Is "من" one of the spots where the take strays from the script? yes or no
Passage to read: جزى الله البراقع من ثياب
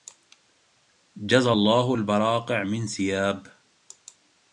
no